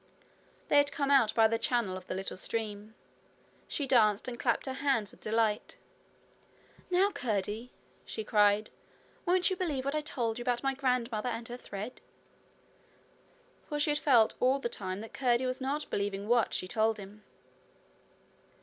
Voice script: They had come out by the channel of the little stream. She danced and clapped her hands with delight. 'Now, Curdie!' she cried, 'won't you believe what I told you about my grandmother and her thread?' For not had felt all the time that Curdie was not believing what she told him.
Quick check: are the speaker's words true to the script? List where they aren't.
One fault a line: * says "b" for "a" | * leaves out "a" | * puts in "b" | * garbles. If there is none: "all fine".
* says "she" for "not"